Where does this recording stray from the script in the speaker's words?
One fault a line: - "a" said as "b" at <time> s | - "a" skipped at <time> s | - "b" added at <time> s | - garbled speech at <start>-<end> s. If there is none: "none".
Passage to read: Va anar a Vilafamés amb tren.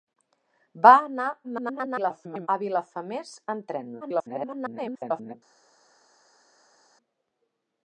- garbled speech at 1.4-2.5 s
- garbled speech at 4.0-5.3 s